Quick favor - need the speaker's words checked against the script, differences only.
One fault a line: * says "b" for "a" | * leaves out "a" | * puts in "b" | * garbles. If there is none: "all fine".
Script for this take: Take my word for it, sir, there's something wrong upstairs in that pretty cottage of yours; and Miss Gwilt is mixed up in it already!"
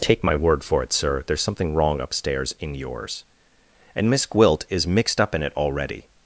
* leaves out "that pretty cottage of"